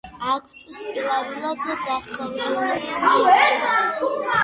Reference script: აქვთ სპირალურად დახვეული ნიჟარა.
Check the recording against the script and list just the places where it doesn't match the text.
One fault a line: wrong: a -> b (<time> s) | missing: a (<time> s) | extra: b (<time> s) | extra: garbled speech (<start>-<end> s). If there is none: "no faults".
no faults